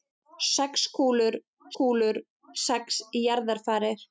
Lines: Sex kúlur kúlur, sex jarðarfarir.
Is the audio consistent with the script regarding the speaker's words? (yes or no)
yes